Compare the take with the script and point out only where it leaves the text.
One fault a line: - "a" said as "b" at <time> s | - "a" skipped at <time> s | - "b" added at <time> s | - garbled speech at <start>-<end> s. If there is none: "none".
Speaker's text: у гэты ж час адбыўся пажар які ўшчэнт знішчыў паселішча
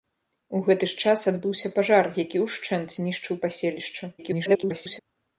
- garbled speech at 4.2-5.0 s